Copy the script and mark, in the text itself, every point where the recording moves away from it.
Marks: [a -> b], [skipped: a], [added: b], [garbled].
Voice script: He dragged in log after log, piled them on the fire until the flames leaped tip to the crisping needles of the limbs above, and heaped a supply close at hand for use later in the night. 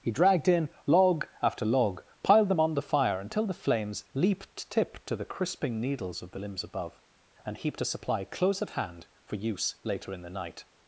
He dragged in log after log, piled them on the fire until the flames leaped tip to the crisping needles of the limbs above, and heaped a supply close at hand for use later in the night.